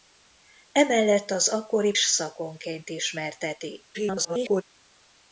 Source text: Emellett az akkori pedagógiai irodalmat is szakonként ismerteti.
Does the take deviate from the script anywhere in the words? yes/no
yes